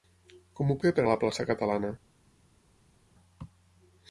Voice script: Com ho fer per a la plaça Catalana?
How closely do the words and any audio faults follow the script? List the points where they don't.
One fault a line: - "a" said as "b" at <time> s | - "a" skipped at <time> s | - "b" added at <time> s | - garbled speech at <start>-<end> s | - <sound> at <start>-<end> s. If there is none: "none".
none